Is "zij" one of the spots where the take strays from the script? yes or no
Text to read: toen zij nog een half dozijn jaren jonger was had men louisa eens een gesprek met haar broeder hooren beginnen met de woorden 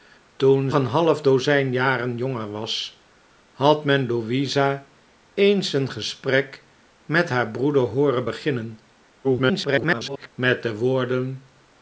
yes